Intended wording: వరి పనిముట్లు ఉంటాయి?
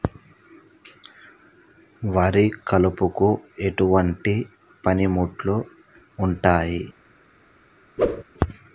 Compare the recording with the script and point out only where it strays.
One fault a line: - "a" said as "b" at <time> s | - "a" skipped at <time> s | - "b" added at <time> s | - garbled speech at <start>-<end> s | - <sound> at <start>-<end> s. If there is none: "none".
- "కలుపుకు ఎటువంటి" added at 2.7 s
- whoosh at 8.0-8.2 s